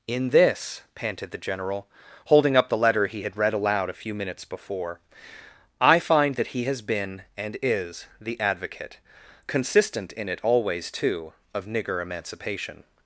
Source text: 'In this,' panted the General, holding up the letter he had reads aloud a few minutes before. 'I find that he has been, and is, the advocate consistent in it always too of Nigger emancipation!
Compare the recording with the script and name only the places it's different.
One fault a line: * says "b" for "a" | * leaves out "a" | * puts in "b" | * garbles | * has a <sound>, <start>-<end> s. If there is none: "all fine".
* says "read" for "reads"